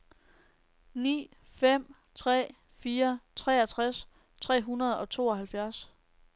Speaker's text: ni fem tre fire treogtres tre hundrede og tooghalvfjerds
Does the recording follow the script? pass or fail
pass